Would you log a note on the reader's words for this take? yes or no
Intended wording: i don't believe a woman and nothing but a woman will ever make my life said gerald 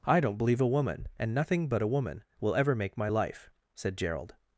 no